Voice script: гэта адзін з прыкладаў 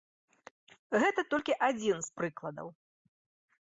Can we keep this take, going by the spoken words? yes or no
no